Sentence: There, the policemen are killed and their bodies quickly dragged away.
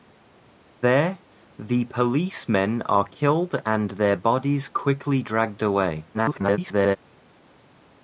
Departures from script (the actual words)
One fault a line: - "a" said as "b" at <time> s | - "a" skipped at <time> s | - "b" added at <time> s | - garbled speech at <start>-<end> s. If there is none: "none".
- garbled speech at 6.1-7.0 s